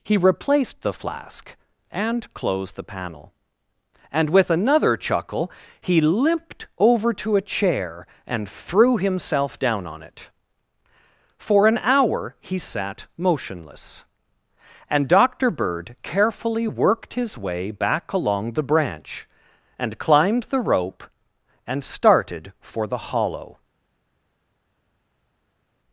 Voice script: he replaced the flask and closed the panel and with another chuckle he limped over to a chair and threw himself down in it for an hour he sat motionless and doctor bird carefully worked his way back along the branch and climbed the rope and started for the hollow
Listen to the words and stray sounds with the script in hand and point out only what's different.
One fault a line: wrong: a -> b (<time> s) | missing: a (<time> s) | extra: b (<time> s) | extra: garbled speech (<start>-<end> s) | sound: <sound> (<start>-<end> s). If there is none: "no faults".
wrong: in -> on (9.9 s)